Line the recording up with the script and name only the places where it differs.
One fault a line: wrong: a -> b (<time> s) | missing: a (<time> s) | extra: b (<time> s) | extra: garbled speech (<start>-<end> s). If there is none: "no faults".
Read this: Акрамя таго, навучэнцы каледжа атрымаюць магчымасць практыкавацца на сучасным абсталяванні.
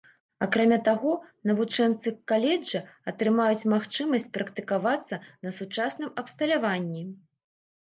no faults